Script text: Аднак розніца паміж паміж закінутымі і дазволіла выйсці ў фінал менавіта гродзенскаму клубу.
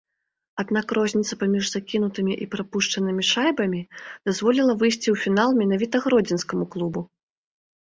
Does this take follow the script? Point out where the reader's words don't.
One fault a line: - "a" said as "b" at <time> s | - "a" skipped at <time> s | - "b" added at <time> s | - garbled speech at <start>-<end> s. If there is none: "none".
- "паміж" skipped at 1.6 s
- "прапушчанымі шайбамі" added at 2.5 s